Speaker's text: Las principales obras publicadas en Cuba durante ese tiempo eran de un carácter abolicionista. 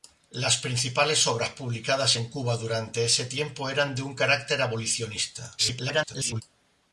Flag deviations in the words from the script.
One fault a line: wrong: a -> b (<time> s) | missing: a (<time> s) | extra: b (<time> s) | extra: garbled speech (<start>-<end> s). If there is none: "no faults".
extra: garbled speech (5.6-6.4 s)